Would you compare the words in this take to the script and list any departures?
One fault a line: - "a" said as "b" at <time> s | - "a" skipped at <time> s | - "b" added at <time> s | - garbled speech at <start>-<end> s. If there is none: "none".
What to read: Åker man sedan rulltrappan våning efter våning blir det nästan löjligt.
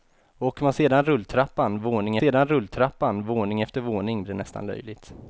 - "sedan rulltrappan våning" added at 2.2 s
- "blir" skipped at 4.2 s